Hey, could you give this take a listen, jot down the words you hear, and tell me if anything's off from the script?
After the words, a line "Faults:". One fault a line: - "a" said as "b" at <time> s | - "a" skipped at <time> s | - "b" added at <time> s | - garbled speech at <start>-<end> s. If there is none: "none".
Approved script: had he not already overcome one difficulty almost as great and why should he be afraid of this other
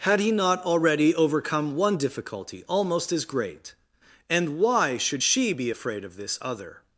had he not already overcome one difficulty almost as great and why should she be afraid of this other
Faults:
- "he" said as "she" at 5.2 s